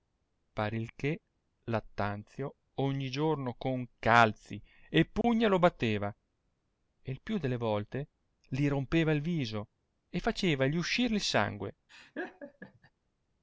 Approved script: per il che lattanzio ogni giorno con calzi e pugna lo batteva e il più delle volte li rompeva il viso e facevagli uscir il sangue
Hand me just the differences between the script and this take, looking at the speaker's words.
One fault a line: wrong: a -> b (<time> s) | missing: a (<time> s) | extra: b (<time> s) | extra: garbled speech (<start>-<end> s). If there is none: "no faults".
no faults